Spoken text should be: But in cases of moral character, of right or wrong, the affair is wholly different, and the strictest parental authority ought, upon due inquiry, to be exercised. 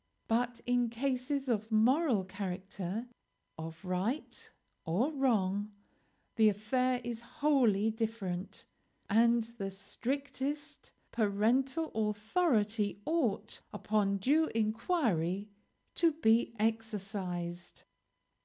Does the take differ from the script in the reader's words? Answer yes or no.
no